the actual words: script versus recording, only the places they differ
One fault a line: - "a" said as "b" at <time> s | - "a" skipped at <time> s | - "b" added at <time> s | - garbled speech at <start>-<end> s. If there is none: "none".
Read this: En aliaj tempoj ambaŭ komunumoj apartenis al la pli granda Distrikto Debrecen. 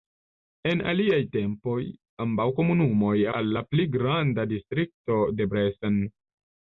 - "apartenis" skipped at 3.1 s